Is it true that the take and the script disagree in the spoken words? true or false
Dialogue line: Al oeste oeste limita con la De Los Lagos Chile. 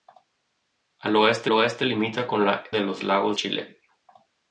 false